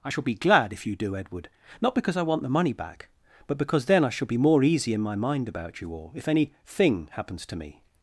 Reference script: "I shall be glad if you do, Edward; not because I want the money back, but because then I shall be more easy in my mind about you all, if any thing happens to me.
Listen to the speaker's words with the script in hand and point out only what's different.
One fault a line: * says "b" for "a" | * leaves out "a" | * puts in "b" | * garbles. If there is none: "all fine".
all fine